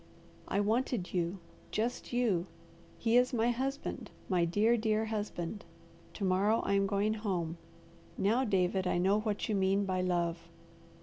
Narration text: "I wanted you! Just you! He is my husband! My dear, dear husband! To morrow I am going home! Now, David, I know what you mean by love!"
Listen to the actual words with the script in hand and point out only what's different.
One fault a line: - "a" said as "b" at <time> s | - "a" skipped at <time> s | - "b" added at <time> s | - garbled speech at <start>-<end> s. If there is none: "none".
none